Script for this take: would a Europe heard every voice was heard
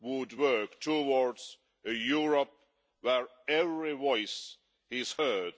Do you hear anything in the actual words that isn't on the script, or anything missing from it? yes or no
yes